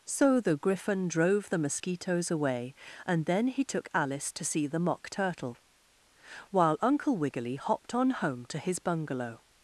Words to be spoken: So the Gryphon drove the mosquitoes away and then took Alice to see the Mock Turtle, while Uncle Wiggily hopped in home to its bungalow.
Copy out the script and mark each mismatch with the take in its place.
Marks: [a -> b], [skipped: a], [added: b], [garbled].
So the Gryphon drove the mosquitoes away and then [added: he] took Alice to see the Mock Turtle, while Uncle Wiggily hopped [in -> on] home to [its -> his] bungalow.